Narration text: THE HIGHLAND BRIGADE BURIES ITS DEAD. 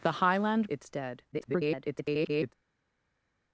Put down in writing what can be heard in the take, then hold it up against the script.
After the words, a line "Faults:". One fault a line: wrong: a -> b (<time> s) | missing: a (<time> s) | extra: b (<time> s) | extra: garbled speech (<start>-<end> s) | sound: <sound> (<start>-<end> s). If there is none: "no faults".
THE HIGHLAND ITS DEAD. [garbled]
Faults:
missing: BRIGADE BURIES (0.7 s)
extra: garbled speech (1.3-2.5 s)